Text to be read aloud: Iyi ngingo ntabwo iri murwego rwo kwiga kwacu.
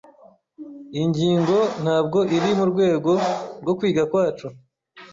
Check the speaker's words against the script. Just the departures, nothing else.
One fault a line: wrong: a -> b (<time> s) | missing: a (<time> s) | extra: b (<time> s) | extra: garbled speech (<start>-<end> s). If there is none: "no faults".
no faults